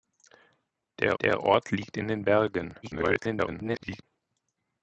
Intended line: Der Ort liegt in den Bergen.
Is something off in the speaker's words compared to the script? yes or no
yes